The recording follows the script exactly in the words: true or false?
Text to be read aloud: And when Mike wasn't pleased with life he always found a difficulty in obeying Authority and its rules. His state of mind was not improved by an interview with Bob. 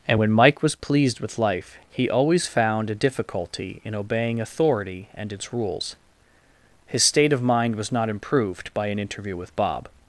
false